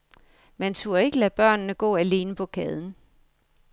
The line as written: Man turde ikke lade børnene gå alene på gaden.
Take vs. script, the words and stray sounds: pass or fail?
pass